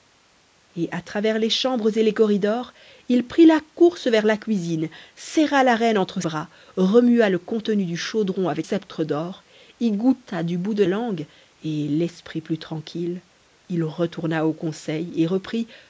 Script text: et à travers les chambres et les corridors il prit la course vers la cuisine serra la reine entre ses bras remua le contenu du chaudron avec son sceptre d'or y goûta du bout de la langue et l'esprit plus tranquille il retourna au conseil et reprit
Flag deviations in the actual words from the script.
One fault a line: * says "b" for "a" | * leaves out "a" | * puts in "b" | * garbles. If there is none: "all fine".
* leaves out "ses"
* leaves out "son"
* leaves out "la"